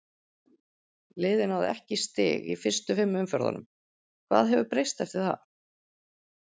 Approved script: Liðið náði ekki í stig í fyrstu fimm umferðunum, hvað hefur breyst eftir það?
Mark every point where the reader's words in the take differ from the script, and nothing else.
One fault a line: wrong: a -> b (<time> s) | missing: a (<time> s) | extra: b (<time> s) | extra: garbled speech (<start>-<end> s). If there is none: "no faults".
no faults